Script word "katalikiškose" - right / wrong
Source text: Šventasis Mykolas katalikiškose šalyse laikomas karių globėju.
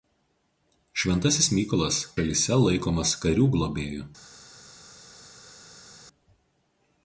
wrong